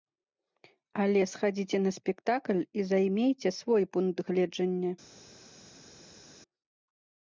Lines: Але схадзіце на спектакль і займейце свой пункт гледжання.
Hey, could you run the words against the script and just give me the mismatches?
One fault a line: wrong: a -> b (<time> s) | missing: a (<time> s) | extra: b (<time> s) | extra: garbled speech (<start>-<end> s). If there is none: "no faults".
no faults